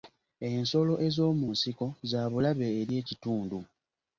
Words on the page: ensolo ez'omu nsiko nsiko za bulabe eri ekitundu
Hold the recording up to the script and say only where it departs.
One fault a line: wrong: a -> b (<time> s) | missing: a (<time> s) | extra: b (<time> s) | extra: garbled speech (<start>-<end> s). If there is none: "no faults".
missing: nsiko (1.9 s)